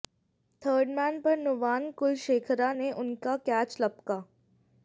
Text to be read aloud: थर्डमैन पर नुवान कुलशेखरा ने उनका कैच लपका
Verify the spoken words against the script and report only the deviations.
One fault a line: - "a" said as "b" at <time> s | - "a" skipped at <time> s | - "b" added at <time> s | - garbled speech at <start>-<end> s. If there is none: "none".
none